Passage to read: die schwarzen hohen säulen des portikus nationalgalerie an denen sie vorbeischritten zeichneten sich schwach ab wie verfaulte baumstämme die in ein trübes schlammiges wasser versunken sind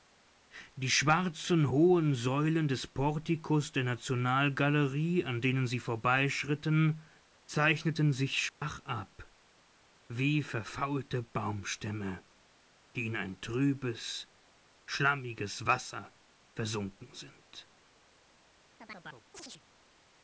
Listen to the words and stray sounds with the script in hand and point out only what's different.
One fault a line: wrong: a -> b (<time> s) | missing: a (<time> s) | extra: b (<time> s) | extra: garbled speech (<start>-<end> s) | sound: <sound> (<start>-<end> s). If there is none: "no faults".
extra: der (3.7 s)
sound: dropout (8.5-8.6 s)
sound: chirp (18.8-19.6 s)